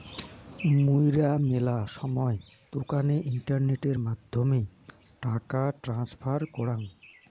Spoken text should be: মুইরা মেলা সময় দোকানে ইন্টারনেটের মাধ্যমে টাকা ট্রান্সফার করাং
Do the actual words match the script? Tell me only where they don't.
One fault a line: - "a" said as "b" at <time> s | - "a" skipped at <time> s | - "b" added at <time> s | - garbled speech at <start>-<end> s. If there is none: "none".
none